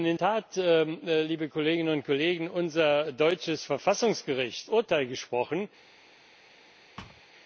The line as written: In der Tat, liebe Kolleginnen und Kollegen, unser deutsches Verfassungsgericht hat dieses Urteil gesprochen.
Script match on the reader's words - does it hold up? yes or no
no